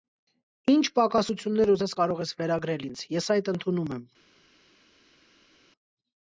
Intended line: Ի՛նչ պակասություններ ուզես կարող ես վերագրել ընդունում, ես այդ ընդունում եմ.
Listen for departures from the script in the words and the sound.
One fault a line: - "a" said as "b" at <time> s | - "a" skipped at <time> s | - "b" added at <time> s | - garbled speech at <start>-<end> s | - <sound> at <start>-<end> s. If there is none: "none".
- "ընդունում" said as "ինձ" at 2.9 s